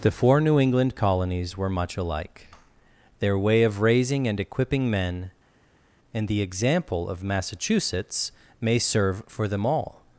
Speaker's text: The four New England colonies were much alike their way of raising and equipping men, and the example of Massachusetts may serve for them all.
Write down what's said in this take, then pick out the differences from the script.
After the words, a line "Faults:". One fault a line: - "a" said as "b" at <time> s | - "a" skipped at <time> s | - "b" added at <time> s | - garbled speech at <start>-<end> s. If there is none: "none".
The four New England colonies were much alike their way of raising and equipping men, and the example of Massachusetts may serve for them all.
Faults:
none